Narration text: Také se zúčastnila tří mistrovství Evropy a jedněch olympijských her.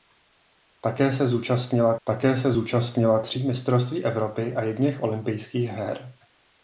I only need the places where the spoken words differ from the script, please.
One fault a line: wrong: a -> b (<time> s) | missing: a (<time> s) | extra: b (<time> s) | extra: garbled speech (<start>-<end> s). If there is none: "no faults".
extra: také se zúčastnila (2.0 s)